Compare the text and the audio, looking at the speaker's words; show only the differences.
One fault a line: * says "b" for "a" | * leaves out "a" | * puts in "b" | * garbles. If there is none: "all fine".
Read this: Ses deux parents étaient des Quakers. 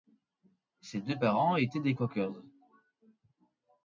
all fine